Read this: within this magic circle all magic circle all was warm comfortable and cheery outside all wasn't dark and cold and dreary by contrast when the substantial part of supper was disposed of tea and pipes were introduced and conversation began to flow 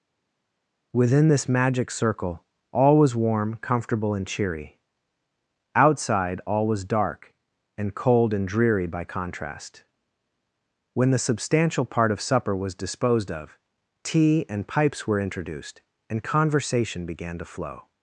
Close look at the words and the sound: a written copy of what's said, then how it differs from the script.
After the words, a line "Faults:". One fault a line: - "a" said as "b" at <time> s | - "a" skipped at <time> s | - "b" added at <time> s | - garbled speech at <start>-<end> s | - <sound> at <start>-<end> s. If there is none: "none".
within this magic circle all was warm comfortable and cheery outside all was dark and cold and dreary by contrast when the substantial part of supper was disposed of tea and pipes were introduced and conversation began to flow
Faults:
- "magic circle all" skipped at 3.0 s
- "wasn't" said as "was" at 6.6 s